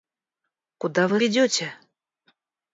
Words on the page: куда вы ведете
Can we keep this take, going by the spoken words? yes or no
yes